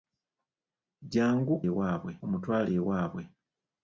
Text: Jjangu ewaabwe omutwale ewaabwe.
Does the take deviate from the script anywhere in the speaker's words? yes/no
no